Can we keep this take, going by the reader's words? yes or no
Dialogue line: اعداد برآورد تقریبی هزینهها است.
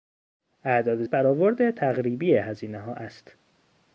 yes